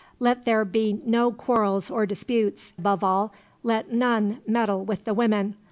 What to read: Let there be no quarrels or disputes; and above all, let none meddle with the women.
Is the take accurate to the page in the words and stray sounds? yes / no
no